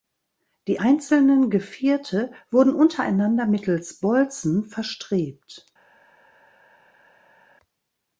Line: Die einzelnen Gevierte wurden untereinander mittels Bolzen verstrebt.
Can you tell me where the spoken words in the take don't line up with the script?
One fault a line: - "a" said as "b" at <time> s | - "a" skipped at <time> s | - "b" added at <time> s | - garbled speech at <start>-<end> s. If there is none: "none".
none